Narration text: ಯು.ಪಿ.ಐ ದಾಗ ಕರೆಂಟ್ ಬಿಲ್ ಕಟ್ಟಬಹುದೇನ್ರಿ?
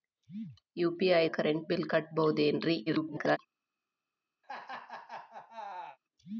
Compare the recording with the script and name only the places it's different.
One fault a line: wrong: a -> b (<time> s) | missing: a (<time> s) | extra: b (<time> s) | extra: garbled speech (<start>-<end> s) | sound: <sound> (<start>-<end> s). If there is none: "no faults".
missing: ದಾಗ (1.2 s)
extra: garbled speech (2.9-3.4 s)
sound: laugh (4.4-6.0 s)